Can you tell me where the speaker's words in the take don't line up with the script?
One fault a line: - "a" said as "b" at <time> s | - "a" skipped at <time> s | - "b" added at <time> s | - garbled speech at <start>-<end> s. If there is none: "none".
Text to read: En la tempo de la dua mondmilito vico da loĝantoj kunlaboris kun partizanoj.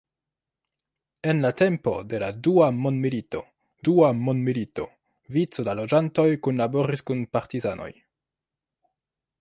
- "dua mondmilito" added at 3.9 s